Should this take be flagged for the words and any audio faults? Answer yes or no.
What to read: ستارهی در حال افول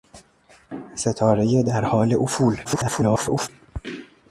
yes